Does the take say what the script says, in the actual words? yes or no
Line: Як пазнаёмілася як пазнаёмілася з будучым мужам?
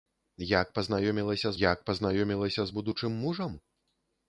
yes